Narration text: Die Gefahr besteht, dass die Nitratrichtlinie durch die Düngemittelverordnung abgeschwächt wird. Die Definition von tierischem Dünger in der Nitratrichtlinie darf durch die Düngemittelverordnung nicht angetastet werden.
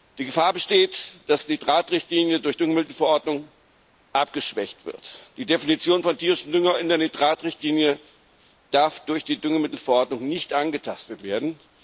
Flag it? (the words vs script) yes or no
no